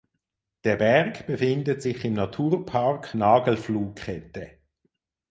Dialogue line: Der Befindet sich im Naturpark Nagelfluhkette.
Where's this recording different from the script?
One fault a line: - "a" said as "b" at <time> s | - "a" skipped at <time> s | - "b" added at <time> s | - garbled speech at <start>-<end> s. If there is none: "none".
- "Berg" added at 0.7 s